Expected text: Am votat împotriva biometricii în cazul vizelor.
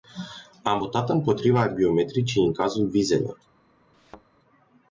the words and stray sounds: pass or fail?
fail